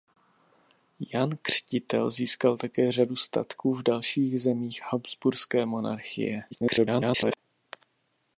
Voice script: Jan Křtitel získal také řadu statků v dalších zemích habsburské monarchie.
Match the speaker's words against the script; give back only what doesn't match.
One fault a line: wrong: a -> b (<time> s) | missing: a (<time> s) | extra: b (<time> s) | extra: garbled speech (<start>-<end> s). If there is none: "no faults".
extra: garbled speech (6.5-7.4 s)